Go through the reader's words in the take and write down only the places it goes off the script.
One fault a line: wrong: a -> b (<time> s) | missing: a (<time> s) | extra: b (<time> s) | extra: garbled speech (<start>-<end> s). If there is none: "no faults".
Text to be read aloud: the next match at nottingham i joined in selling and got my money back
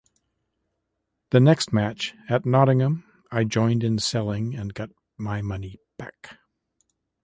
no faults